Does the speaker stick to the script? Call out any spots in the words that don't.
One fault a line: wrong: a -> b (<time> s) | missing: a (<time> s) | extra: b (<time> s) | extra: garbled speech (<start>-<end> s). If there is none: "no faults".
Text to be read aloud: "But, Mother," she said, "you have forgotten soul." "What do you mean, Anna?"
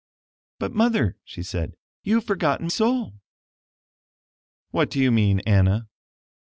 no faults